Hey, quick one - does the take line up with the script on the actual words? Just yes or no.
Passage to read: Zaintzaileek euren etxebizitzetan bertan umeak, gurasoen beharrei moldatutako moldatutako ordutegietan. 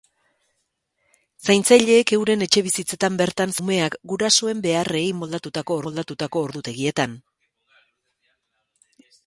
yes